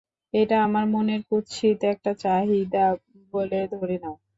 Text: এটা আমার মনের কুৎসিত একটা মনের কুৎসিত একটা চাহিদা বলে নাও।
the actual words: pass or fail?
fail